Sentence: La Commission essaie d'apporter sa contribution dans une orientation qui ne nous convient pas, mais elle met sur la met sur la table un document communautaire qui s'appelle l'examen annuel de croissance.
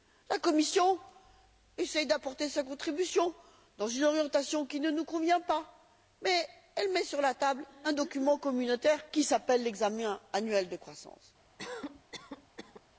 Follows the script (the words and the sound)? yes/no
no